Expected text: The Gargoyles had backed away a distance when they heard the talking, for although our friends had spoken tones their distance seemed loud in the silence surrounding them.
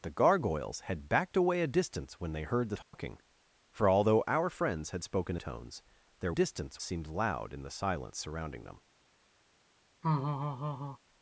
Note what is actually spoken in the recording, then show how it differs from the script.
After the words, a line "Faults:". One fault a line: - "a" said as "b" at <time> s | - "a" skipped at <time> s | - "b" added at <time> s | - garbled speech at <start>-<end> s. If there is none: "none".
The Gargoyles had backed away a distance when they heard the talking, for although our friends had spoken tones their distance seemed loud in the silence surrounding them.
Faults:
none